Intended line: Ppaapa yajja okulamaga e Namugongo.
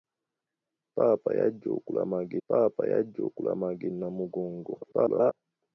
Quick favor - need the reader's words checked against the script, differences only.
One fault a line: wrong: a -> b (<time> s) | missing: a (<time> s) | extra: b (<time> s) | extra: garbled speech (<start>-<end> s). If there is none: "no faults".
extra: ppaapa yajja okulamaga (2.5 s)
extra: garbled speech (4.8-5.3 s)